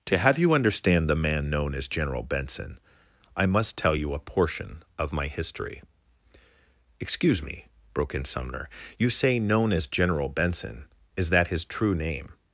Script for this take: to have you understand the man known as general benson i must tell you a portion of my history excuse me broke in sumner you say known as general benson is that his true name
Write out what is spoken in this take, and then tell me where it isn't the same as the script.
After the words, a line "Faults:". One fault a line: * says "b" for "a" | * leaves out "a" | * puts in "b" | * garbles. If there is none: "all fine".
to have you understand the man known as general benson i must tell you a portion of my history excuse me broke in sumner you say known as general benson is that his true name
Faults:
all fine